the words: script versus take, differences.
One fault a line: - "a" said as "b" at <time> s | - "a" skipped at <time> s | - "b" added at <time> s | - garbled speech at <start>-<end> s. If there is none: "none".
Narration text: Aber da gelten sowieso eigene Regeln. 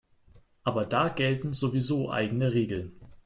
none